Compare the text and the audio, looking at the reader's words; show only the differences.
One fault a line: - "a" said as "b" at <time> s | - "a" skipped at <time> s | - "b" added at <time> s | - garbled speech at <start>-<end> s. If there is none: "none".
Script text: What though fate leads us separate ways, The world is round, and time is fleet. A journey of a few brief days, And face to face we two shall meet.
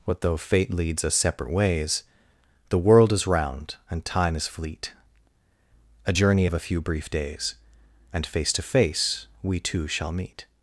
none